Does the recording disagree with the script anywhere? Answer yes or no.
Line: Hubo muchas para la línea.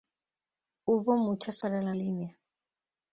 no